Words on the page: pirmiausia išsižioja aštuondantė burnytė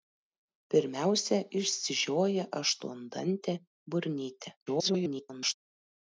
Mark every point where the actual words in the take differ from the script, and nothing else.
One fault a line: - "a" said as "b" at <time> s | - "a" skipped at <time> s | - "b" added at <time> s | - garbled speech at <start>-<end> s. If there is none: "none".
- garbled speech at 4.7-5.5 s